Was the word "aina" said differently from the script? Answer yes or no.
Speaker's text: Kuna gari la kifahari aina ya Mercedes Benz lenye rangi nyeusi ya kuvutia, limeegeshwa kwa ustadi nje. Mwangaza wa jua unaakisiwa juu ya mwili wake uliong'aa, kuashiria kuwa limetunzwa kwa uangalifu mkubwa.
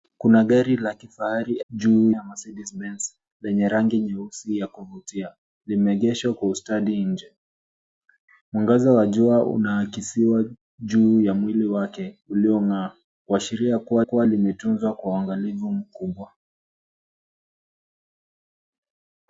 yes